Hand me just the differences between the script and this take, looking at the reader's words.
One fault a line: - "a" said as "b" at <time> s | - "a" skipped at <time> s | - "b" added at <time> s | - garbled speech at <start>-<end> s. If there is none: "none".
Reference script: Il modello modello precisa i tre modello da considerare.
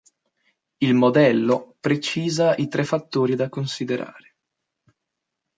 - "modello" skipped at 1.8 s
- "modello" said as "fattori" at 2.8 s